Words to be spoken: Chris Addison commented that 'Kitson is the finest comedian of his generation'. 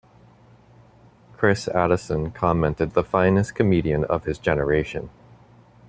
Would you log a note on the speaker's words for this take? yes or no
yes